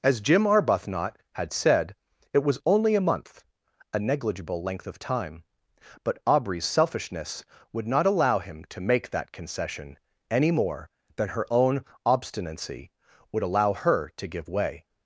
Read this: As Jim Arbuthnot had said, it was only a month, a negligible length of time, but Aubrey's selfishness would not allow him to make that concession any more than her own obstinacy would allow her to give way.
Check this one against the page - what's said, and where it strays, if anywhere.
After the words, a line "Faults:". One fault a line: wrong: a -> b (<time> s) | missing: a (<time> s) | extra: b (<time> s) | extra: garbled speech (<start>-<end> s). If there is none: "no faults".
As Jim Arbuthnot had said, it was only a month, a negligible length of time, but Aubrey's selfishness would not allow him to make that concession any more than her own obstinacy would allow her to give way.
Faults:
no faults